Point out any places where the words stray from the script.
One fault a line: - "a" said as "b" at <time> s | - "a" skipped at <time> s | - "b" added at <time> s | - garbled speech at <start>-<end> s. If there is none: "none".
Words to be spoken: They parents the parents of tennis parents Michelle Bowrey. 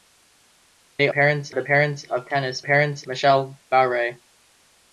none